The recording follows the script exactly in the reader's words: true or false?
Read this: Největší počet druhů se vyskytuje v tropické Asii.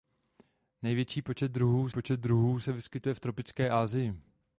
false